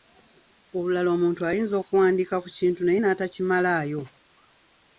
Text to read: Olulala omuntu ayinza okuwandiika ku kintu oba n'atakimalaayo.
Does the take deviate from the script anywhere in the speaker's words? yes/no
yes